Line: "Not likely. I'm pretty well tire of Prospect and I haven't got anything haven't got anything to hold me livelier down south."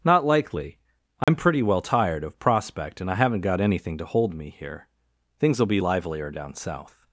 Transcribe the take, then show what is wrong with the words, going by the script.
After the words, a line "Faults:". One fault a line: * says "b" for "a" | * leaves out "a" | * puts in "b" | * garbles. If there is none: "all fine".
"Not likely. I'm pretty well tired of Prospect and I haven't got anything to hold me here. Things'll be livelier down south."
Faults:
* says "tired" for "tire"
* says "to hold me here Things'll be" for "haven't got anything to hold me"